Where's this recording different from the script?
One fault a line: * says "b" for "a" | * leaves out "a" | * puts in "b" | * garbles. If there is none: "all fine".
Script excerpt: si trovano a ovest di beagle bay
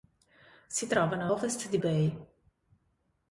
* leaves out "a"
* leaves out "beagle"